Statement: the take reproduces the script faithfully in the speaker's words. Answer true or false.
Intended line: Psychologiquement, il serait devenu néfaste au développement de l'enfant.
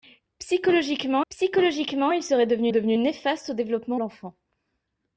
false